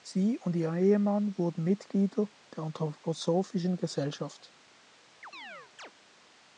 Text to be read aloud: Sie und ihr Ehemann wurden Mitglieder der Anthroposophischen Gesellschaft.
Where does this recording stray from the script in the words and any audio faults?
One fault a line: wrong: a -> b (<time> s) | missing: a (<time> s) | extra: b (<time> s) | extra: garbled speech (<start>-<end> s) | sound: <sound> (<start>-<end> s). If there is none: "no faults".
sound: chirp (5.2-5.9 s)